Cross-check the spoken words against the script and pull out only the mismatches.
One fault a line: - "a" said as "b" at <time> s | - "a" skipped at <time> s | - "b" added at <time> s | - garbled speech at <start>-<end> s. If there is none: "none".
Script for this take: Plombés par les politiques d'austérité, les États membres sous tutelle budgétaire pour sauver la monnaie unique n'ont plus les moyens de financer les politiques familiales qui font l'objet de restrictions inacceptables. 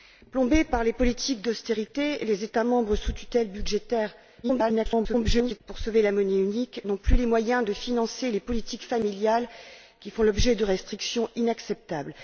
- garbled speech at 4.4-5.6 s